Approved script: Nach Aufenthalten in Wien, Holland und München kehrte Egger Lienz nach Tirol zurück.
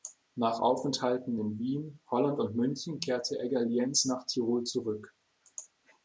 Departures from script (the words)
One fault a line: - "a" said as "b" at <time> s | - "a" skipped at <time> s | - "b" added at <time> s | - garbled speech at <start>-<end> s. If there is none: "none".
none